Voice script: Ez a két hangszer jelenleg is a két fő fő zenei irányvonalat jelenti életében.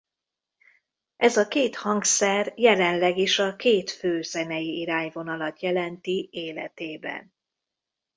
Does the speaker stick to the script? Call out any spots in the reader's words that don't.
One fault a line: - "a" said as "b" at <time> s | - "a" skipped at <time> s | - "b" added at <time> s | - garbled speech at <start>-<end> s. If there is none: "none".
- "fő" skipped at 4.2 s